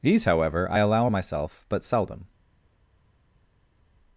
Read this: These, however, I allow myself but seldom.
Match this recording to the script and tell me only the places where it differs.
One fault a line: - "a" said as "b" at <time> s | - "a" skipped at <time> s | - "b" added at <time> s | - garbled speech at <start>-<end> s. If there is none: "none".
none